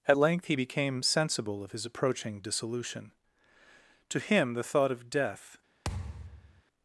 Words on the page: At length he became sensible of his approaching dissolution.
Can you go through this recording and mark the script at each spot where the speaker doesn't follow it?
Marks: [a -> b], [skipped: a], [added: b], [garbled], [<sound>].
At length he became sensible of his approaching dissolution. [added: To him the thought of death] [thud]